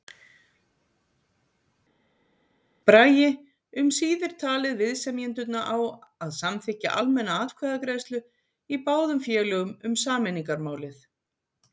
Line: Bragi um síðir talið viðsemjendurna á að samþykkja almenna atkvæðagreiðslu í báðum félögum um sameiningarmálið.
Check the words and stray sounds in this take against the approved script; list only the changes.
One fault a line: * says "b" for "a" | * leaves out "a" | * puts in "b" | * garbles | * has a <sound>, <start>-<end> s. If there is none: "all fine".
all fine